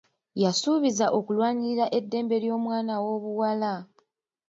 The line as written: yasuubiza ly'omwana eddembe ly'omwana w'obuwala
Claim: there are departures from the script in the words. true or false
true